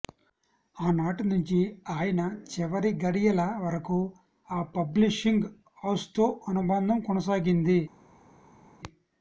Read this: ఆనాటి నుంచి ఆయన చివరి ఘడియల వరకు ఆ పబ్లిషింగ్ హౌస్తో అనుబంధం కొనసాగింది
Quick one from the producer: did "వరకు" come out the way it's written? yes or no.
yes